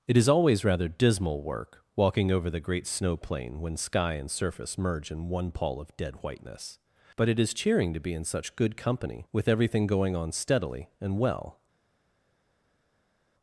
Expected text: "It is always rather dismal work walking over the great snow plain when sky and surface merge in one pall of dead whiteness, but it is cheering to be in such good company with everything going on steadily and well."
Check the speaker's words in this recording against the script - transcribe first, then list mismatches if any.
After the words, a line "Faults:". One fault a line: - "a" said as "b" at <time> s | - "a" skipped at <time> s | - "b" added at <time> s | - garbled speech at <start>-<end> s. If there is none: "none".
"It is always rather dismal work walking over the great snow plain when sky and surface merge in one pall of dead whiteness, but it is cheering to be in such good company with everything going on steadily and well."
Faults:
none